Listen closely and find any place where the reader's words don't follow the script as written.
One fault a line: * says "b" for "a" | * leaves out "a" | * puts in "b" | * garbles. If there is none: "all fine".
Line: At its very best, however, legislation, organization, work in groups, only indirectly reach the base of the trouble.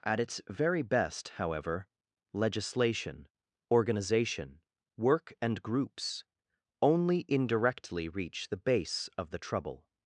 * says "and" for "in"